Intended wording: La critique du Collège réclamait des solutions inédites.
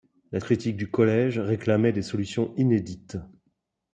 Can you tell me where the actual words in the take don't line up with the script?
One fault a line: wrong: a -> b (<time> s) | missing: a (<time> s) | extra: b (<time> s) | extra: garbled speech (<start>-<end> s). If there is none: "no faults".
no faults